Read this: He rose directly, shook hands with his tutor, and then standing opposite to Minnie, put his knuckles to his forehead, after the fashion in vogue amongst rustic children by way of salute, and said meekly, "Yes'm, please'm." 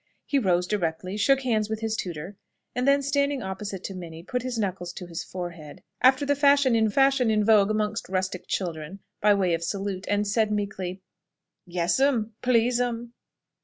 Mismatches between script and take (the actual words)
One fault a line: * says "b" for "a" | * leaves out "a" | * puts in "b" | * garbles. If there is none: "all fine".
* puts in "fashion in"